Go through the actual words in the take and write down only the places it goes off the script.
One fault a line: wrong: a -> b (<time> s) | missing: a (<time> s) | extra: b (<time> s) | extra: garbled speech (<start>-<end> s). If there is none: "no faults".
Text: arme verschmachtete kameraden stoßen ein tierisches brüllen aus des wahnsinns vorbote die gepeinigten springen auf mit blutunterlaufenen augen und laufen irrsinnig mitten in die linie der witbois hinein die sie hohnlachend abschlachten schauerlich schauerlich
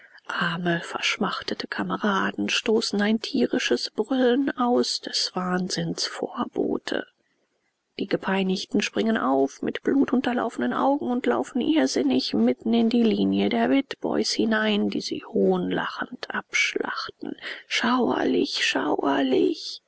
no faults